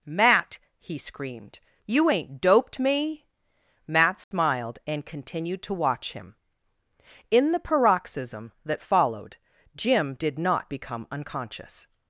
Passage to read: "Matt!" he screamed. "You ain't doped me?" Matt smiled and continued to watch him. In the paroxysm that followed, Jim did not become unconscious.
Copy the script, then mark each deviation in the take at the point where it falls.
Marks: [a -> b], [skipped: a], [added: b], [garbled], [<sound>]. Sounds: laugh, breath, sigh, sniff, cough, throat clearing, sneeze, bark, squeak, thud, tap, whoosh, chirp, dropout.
"Matt!" he screamed. "You ain't doped me?" Matt smiled [dropout] and continued to watch him. In the paroxysm that followed, Jim did not become unconscious.